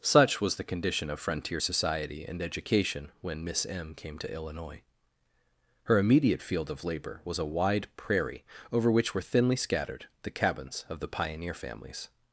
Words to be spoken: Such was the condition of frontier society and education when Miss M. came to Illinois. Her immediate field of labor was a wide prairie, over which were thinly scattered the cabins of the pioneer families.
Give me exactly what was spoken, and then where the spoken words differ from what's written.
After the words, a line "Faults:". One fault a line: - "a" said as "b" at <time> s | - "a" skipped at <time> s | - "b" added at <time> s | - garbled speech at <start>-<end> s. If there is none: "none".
Such was the condition of frontier society and education when Miss M. came to Illinois. Her immediate field of labor was a wide prairie, over which were thinly scattered the cabins of the pioneer families.
Faults:
none